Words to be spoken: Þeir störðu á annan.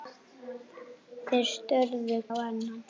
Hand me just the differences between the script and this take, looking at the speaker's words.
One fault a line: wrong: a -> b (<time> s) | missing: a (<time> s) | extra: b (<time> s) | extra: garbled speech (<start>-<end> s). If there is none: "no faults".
no faults